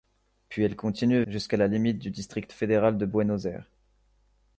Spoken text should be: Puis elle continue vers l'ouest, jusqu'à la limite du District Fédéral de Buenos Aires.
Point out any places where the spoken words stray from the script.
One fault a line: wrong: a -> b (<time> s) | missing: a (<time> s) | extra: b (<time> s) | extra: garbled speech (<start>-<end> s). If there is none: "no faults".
missing: vers l'ouest (1.2 s)